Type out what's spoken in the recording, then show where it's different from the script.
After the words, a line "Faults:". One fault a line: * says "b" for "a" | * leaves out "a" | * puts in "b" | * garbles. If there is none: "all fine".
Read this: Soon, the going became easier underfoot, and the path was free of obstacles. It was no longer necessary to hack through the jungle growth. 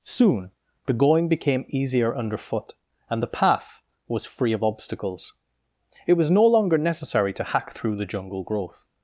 Soon, the going became easier underfoot, and the path was free of obstacles. It was no longer necessary to hack through the jungle growth.
Faults:
all fine